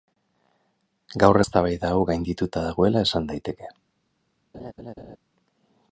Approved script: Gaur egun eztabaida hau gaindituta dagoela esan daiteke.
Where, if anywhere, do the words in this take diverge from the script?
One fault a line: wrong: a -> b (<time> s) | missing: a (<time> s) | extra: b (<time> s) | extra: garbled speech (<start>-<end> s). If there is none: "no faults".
missing: egun (1.4 s)